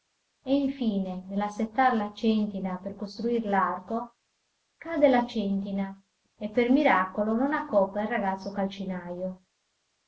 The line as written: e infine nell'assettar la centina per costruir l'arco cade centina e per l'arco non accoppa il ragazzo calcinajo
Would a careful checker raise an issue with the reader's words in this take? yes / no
yes